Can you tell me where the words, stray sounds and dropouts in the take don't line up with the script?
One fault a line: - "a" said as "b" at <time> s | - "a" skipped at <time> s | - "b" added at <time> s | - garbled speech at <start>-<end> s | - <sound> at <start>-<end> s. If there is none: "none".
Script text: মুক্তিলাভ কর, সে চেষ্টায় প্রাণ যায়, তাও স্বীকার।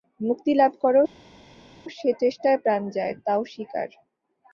none